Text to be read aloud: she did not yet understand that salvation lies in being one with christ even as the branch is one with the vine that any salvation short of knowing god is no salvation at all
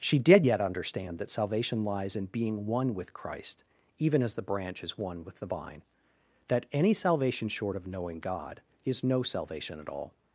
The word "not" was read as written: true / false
false